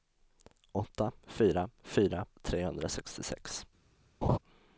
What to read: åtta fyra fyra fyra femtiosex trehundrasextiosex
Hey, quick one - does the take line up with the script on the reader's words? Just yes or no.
no